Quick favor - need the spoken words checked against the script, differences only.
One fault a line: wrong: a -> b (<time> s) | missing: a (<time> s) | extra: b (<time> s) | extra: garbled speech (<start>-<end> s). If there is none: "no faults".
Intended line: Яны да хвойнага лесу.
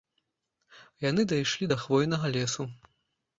extra: дайшлі (1.3 s)